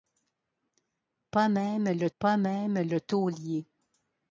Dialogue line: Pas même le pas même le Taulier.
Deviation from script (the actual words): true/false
false